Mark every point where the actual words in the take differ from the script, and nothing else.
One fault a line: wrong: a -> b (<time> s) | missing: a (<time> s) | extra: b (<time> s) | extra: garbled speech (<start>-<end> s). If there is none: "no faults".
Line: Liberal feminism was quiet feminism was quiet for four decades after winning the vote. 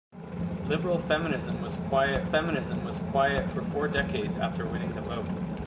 no faults